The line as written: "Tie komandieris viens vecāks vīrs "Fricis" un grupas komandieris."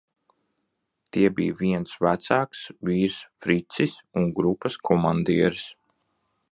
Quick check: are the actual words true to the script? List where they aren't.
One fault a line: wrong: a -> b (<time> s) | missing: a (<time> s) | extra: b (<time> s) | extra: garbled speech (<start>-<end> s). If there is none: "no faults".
wrong: komandieris -> bija (1.4 s)